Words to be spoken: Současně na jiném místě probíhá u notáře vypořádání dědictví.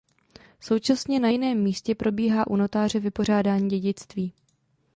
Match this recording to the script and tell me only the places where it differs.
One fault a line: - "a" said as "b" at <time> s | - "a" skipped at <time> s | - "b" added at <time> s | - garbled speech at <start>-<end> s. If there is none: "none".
none